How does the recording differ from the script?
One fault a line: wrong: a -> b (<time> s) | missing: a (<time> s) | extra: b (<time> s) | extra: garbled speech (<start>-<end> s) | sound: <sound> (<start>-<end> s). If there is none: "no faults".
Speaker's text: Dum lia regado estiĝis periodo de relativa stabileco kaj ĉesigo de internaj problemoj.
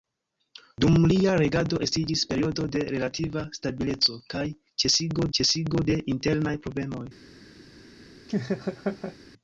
extra: ĉesigo (5.4 s)
sound: laugh (8.3-9.2 s)